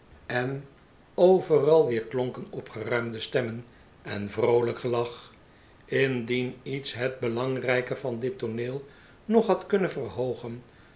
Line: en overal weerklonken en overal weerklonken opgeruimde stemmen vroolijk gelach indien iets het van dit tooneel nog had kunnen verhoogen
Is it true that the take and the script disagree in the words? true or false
true